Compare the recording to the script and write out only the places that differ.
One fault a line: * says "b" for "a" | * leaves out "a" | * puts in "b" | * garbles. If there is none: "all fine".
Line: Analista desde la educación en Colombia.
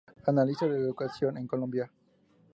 * says "de" for "desde"